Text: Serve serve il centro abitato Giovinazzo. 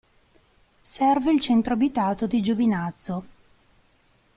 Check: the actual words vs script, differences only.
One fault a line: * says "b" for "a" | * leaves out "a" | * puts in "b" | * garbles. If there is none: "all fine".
* leaves out "serve"
* puts in "di"